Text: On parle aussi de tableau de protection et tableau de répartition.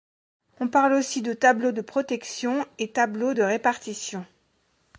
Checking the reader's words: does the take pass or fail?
pass